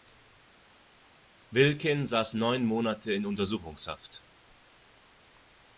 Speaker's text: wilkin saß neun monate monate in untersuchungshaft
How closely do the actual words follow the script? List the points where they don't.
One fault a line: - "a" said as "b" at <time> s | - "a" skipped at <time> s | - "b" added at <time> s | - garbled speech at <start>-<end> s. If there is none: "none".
- "monate" skipped at 3.1 s